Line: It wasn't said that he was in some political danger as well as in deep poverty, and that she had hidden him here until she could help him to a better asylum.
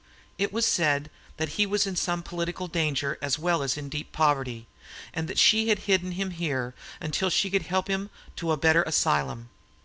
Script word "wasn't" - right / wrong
wrong